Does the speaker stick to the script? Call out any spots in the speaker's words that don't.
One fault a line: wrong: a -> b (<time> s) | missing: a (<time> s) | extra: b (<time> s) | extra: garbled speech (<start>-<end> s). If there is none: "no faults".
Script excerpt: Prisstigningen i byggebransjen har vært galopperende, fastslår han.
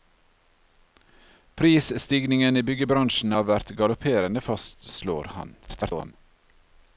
extra: garbled speech (5.6-6.1 s)